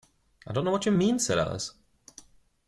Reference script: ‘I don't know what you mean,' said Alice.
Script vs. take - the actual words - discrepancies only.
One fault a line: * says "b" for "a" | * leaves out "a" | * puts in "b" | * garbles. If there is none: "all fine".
all fine